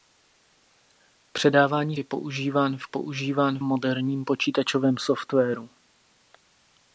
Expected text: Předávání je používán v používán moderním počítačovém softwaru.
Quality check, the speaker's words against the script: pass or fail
pass